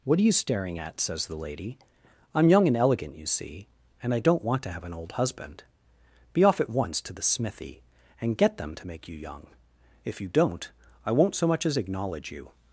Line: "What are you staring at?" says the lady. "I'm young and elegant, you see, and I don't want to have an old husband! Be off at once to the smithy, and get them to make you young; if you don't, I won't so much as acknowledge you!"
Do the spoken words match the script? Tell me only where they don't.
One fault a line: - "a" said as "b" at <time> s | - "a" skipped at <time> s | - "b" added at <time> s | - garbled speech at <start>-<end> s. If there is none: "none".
none